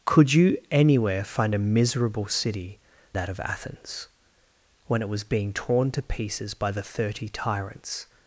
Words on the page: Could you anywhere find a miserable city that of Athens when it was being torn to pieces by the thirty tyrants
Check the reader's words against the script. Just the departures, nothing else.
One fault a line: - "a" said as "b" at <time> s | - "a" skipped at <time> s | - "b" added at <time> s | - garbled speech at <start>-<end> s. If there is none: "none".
none